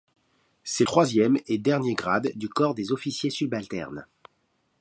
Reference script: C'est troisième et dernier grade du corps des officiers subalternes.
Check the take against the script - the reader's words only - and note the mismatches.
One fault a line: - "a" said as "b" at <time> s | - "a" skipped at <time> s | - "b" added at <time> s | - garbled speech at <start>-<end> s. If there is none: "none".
none